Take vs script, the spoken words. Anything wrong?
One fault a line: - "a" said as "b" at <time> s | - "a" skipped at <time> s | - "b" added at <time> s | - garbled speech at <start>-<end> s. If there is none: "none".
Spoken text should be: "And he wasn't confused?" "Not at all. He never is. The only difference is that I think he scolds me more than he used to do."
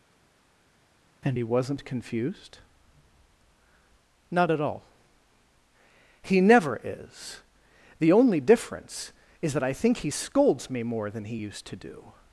none